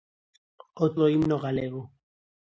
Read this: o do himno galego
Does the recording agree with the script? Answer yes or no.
yes